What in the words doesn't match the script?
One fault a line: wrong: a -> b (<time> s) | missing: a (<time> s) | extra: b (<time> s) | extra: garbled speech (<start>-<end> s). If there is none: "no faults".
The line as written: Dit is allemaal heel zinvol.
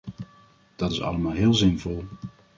wrong: Dit -> Dat (0.8 s)